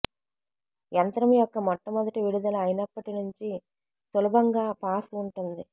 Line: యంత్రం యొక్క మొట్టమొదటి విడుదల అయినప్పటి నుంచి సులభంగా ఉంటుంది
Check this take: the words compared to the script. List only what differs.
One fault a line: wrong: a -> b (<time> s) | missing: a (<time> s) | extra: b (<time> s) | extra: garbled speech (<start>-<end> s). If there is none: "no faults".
extra: పాస్ (4.8 s)